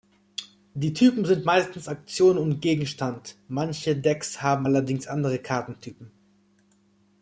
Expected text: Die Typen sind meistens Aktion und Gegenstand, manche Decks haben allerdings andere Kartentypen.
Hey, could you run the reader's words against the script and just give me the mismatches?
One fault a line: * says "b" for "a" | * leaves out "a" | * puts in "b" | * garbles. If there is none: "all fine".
all fine